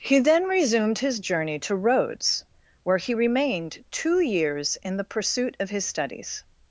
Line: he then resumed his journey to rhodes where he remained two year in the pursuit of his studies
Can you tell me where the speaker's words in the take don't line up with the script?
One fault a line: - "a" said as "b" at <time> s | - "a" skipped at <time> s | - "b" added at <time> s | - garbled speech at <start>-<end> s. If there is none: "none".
- "year" said as "years" at 4.2 s